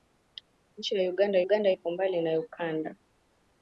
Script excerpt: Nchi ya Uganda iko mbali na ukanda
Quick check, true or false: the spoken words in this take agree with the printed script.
false